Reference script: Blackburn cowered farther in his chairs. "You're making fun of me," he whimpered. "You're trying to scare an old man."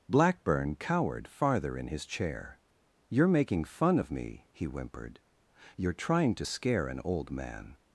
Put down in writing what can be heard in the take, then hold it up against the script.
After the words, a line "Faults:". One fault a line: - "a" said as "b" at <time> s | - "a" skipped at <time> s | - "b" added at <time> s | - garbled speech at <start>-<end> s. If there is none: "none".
Blackburn cowered farther in his chair. "You're making fun of me," he whimpered. "You're trying to scare an old man."
Faults:
- "chairs" said as "chair" at 2.0 s